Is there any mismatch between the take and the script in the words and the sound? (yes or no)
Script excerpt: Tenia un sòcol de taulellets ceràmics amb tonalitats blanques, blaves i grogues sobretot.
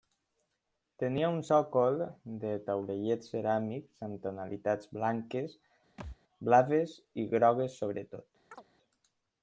yes